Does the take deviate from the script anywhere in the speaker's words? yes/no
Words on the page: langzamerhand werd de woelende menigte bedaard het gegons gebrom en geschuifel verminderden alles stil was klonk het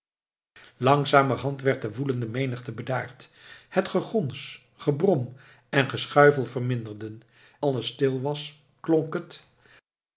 no